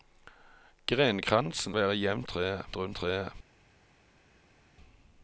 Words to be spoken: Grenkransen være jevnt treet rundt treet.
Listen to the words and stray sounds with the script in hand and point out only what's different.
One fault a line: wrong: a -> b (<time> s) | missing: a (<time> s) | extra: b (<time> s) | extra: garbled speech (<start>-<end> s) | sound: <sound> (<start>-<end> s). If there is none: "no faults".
no faults